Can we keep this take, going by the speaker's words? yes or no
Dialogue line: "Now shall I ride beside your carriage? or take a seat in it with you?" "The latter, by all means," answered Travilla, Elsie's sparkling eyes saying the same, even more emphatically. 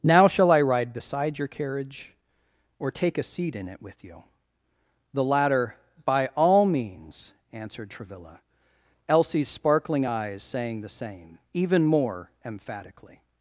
yes